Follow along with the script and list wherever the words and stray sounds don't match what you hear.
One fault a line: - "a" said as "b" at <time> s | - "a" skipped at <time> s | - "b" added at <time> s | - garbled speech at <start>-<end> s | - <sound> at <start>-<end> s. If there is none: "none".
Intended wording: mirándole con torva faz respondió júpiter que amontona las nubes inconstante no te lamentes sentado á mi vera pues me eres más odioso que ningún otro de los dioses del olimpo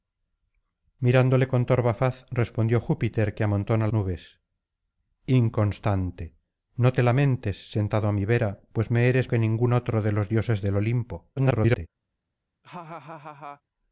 - "las" skipped at 3.9 s
- "más odioso" skipped at 9.3 s
- garbled speech at 11.4-11.9 s
- laugh at 12.6-13.6 s